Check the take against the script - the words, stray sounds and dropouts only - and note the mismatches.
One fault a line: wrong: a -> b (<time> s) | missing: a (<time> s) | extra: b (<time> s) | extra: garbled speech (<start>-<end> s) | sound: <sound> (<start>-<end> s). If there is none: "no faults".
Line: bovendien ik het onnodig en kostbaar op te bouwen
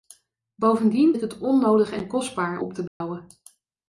sound: dropout (2.9-3.0 s)